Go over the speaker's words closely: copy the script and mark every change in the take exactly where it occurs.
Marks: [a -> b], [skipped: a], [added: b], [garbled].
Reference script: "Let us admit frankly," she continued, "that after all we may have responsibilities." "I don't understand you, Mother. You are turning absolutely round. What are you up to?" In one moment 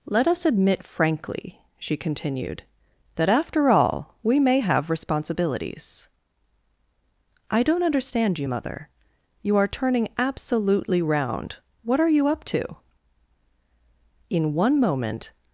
"Let us admit frankly," she continued, "that after all we may have responsibilities." "I don't understand you, Mother. You are turning absolutely round. What are you up to?" In one moment